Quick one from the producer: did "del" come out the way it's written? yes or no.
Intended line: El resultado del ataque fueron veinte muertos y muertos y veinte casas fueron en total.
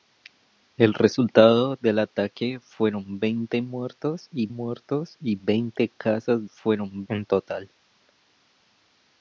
yes